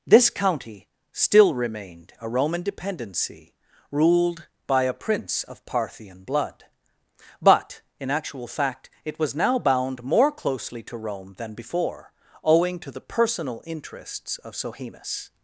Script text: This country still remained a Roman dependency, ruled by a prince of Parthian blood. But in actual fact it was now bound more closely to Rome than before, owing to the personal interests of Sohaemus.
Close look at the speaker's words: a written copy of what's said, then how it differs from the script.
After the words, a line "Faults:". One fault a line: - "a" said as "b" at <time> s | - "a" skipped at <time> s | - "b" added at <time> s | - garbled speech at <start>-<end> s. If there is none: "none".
This county still remained a Roman dependency, ruled by a prince of Parthian blood. But in actual fact it was now bound more closely to Rome than before, owing to the personal interests of Sohaemus.
Faults:
- "country" said as "county" at 0.3 s